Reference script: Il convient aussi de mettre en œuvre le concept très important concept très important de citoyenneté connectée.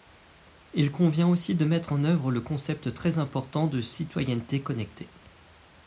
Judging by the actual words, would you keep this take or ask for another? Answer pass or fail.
fail